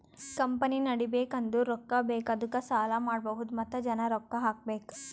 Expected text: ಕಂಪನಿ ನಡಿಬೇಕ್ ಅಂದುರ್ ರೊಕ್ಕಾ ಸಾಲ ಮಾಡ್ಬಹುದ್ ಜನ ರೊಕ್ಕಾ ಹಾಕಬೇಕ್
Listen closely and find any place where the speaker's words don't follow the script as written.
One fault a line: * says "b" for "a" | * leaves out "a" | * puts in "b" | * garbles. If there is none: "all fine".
* puts in "ಬೇಕ್ ಅದ್ದುಕ"
* puts in "ಮತ್ತ"